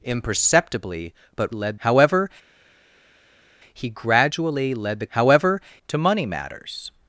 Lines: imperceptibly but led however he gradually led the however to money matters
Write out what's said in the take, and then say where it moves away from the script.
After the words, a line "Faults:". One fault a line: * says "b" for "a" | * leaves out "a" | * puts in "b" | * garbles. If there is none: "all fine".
imperceptibly but led however he gradually led the however to money matters
Faults:
all fine